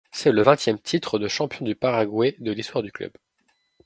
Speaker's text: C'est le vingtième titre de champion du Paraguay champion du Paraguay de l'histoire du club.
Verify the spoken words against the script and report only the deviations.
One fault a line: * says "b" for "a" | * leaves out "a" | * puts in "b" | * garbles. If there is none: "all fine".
* leaves out "champion du Paraguay"